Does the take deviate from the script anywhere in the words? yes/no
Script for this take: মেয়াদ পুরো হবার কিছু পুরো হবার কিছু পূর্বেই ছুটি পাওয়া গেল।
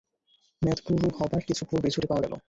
yes